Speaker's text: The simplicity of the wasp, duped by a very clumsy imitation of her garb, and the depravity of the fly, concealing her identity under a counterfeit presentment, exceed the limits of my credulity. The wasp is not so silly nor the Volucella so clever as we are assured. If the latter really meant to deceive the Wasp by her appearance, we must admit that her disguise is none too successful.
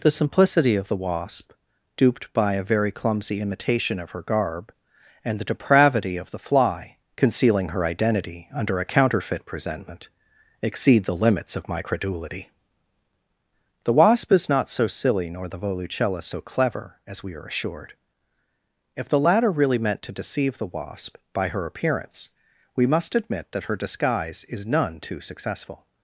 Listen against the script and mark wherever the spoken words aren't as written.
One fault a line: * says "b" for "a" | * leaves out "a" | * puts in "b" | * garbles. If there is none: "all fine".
all fine